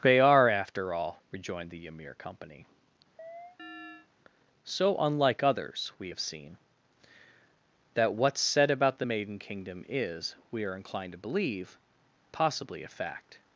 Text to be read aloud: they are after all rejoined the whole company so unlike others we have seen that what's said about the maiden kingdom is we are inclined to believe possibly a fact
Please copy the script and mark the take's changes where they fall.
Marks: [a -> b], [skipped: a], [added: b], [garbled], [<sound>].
they are after all rejoined the [whole -> ymir] company [chirp] so unlike others we have seen that what's said about the maiden kingdom is we are inclined to believe possibly a fact